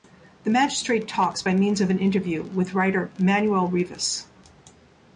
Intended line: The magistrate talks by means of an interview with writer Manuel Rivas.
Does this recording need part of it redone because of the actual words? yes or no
no